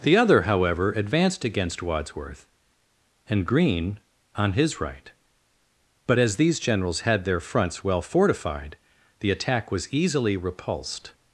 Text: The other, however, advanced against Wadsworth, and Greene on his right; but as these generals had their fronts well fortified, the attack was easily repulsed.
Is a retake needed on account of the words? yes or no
no